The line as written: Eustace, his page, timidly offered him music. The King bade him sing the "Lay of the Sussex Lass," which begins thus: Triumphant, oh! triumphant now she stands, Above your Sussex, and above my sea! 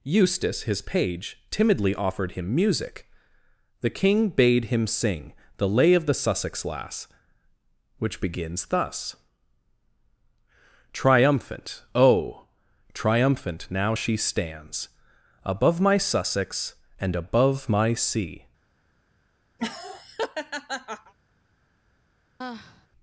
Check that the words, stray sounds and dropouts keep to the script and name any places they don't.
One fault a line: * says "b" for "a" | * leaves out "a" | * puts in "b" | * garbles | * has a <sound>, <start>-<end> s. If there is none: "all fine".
* says "my" for "your"
* has a laugh, 19.6-21.1 s
* has a sigh, 22.4-22.9 s